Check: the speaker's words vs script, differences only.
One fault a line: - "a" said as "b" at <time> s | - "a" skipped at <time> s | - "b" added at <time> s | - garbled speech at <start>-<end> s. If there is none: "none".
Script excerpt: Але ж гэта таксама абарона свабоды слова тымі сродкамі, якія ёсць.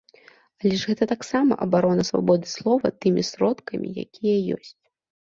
none